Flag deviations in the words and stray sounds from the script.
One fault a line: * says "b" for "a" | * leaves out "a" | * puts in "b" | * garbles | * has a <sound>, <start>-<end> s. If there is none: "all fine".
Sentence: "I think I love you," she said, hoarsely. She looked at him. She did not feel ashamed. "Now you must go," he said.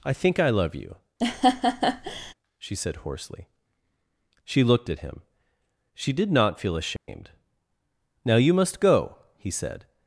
* has a laugh, 1.2-2.3 s
* has a dropout, 7.0-7.1 s